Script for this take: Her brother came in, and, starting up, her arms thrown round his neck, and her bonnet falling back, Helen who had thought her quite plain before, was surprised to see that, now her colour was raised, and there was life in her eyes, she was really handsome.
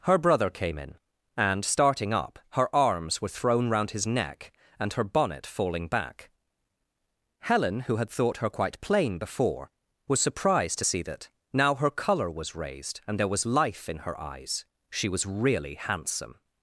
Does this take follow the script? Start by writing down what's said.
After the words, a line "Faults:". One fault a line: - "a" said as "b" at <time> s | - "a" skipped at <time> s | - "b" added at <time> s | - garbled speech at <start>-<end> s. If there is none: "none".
Her brother came in, and, starting up, her arms were thrown round his neck, and her bonnet falling back, Helen who had thought her quite plain before, was surprised to see that, now her colour was raised, and there was life in her eyes, she was really handsome.
Faults:
- "were" added at 3.2 s